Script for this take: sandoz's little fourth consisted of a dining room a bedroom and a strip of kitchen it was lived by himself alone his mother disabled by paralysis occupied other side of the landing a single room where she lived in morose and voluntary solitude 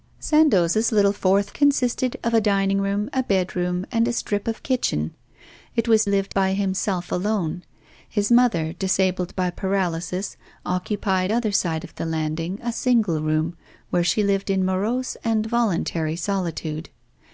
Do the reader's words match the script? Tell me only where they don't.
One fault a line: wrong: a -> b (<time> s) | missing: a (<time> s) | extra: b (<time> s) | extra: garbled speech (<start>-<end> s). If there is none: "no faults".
no faults